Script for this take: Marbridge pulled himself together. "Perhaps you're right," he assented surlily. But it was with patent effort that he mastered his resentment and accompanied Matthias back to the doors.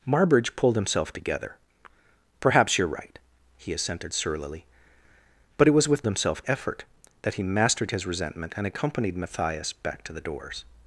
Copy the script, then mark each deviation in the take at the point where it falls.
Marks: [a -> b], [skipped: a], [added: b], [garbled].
Marbridge pulled himself together. "Perhaps you're right," he assented surlily. But it was with [patent -> himself] effort that he mastered his resentment and accompanied Matthias back to the doors.